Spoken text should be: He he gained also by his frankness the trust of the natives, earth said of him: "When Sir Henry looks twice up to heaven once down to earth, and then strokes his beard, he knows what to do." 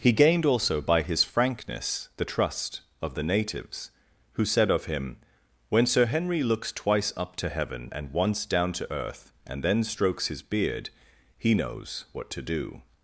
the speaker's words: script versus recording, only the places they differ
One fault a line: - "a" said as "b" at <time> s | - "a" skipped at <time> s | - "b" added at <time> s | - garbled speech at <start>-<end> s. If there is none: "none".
- "he" skipped at 0.1 s
- "earth" said as "who" at 4.3 s
- "and" added at 7.9 s